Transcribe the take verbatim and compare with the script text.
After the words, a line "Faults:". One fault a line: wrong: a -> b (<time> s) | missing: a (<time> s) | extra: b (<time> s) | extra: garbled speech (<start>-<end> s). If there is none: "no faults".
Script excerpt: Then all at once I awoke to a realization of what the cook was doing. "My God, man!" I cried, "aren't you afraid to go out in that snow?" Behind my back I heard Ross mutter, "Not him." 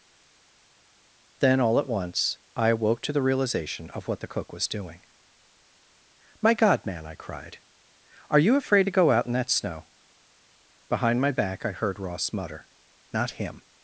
Then all at once I awoke to the realization of what the cook was doing. "My God, man!" I cried, "are you afraid to go out in that snow?" Behind my back I heard Ross mutter, "Not him."
Faults:
wrong: a -> the (3.1 s)
wrong: aren't -> are (8.3 s)